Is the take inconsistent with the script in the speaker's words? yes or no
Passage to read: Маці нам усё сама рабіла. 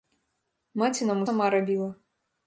yes